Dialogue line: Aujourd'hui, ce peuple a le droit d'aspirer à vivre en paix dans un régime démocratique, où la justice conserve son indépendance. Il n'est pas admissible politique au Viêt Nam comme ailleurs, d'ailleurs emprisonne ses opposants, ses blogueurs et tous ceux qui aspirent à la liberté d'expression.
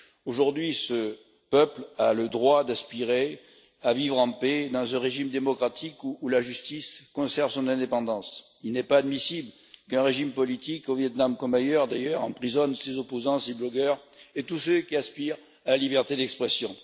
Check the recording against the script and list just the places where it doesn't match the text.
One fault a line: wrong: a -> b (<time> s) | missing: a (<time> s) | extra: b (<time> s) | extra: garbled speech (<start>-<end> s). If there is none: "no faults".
extra: qu'un régime (9.9 s)